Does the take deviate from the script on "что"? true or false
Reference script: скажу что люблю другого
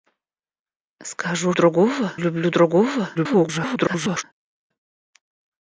true